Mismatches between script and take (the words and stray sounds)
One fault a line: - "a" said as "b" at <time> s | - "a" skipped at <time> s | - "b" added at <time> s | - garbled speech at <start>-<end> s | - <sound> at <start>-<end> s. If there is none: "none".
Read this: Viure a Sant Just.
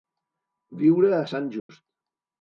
- dropout at 1.6-1.7 s